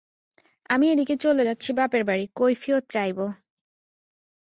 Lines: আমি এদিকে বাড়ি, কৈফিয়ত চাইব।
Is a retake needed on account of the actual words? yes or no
yes